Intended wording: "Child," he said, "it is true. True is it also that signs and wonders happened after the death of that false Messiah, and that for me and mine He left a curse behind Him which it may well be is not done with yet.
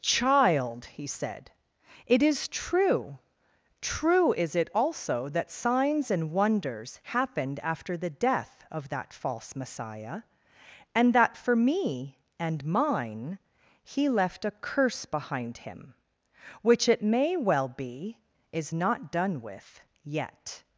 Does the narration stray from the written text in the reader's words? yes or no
no